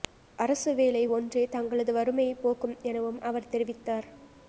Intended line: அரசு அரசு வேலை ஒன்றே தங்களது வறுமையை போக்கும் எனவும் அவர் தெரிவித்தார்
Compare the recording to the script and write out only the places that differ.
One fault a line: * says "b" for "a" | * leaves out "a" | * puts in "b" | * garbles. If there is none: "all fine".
* leaves out "அரசு"